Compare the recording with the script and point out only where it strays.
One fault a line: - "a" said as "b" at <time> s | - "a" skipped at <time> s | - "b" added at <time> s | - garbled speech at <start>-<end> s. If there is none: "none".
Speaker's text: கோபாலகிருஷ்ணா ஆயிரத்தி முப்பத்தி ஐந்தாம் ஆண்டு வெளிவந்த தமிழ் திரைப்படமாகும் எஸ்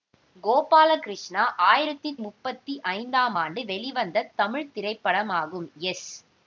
none